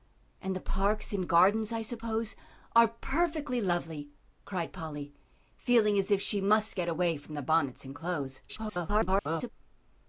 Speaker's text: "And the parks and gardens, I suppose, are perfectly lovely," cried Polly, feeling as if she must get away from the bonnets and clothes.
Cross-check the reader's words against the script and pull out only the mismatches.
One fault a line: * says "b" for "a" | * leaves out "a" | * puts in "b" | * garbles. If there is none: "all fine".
* garbles